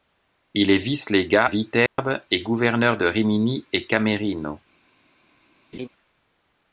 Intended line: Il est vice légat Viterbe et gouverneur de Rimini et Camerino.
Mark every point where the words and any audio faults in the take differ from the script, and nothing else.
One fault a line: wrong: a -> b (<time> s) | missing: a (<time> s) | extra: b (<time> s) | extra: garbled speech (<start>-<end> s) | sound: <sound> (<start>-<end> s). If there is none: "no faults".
sound: dropout (1.9-2.0 s)
sound: laugh (5.7-5.9 s)